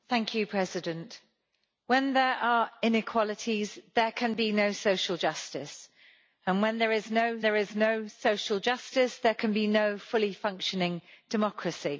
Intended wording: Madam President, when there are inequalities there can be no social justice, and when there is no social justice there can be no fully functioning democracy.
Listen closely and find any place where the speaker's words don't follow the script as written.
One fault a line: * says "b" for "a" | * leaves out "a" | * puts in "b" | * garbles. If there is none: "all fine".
* puts in "there is no"